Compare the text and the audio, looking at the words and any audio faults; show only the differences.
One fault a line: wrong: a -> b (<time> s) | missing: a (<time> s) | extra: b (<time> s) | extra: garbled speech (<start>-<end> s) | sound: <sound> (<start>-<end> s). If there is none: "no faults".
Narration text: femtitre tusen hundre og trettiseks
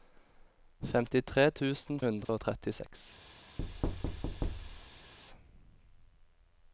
sound: dropout (2.2-2.3 s)
sound: thud (3.6-5.1 s)